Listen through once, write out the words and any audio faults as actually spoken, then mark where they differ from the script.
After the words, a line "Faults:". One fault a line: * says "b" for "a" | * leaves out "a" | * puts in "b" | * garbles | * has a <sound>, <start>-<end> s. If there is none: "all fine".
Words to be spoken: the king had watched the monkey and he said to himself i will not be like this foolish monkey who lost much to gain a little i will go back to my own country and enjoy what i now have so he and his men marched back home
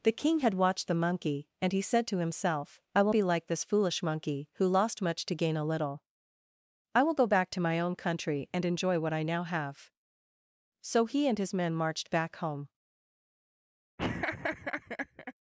the king had watched the monkey and he said to himself i will be like this foolish monkey who lost much to gain a little i will go back to my own country and enjoy what i now have so he and his men marched back home
Faults:
* leaves out "not"
* has a laugh, 14.0-15.3 s